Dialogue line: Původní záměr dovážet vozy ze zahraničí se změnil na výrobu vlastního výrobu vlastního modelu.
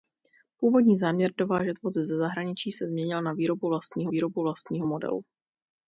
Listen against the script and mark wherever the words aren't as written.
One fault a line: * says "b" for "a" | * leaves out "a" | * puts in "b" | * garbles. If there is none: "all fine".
all fine